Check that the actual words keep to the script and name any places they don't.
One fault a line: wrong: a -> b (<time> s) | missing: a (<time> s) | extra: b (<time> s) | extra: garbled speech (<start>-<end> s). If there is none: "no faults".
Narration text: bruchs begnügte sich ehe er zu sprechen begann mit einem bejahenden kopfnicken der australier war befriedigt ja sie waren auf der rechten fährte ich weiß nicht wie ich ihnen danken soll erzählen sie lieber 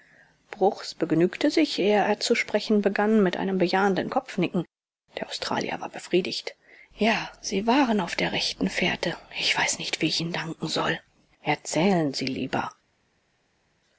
no faults